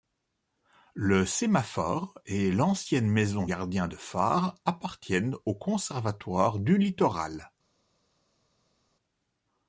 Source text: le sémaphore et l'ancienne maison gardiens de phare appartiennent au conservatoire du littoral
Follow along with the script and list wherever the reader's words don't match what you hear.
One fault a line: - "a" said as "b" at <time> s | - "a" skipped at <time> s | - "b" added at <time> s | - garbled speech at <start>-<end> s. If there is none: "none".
none